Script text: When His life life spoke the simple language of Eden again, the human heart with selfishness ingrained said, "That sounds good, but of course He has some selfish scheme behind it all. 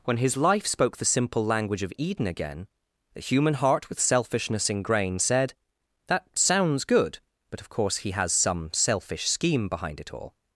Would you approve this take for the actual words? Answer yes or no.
no